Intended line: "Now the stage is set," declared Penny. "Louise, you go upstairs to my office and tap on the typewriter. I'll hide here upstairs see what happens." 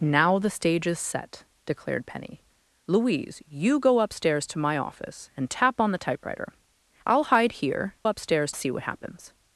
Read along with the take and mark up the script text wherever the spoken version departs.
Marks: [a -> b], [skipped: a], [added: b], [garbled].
"Now the stage is set," declared Penny. "Louise, you go upstairs to my office and tap on the typewriter. I'll hide here upstairs see what happens."